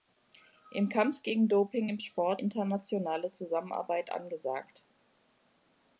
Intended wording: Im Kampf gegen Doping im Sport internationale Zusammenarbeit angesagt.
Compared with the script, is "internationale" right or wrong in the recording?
right